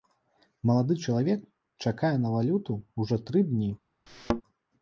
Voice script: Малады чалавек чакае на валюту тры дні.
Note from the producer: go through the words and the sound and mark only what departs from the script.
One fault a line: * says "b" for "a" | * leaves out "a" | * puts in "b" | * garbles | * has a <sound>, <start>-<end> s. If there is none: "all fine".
* puts in "ўжо"
* has a thud, 4.1-4.4 s